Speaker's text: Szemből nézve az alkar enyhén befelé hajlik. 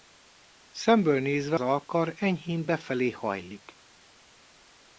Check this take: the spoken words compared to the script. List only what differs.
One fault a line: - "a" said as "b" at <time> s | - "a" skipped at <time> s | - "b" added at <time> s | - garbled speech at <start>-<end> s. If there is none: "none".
- "az" skipped at 1.6 s